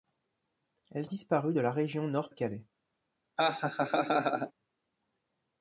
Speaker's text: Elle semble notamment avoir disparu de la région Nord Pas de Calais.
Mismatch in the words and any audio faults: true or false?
true